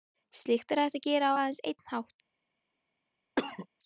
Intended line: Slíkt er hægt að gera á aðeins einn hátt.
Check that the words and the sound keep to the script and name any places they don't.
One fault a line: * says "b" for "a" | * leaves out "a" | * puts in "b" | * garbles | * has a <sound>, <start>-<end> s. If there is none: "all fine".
* has a cough, 3.4-3.7 s